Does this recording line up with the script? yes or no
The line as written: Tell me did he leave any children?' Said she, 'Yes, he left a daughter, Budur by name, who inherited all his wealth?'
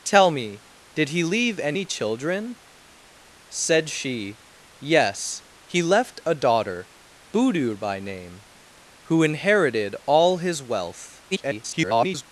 no